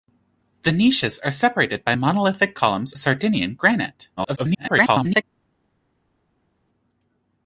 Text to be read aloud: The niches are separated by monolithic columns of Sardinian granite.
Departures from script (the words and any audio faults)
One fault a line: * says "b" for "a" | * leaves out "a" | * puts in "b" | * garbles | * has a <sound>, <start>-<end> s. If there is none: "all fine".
* leaves out "of"
* garbles